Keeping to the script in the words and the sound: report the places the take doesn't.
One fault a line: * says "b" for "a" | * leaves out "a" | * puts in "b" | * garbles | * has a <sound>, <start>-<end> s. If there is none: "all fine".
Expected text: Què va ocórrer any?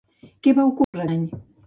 * has a dropout, 0.8-0.9 s